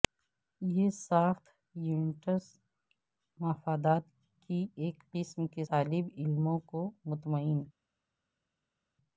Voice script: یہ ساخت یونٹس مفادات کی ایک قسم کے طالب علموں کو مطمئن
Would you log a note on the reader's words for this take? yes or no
no